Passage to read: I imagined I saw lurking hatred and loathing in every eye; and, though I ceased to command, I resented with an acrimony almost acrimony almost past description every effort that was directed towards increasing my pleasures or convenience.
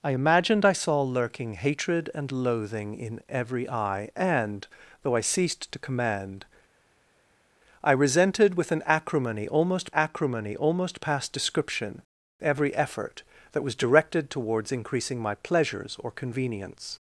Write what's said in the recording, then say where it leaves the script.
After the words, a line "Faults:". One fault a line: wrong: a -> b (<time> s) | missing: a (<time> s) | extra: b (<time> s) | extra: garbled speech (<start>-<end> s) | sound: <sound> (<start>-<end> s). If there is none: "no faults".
I imagined I saw lurking hatred and loathing in every eye; and, though I ceased to command, I resented with an acrimony almost acrimony almost past description every effort that was directed towards increasing my pleasures or convenience.
Faults:
no faults